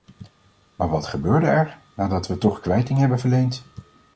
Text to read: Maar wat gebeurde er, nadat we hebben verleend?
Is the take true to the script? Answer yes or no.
no